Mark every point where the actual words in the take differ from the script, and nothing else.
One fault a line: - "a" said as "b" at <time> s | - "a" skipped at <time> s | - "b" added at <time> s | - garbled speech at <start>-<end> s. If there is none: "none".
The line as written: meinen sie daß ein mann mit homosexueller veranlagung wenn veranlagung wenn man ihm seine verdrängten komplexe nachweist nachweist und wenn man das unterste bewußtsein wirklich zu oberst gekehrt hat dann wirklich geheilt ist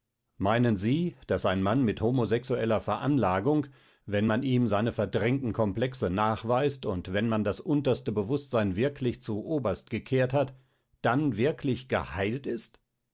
- "veranlagung wenn" skipped at 4.3 s
- "nachweist" skipped at 6.8 s